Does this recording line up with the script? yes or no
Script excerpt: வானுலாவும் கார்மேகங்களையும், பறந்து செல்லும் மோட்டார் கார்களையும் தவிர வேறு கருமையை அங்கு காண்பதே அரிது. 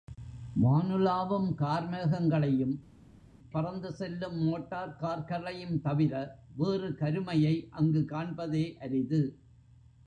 yes